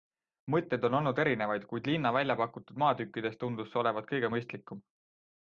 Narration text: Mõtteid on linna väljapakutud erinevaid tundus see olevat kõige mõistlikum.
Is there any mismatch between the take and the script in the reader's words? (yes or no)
yes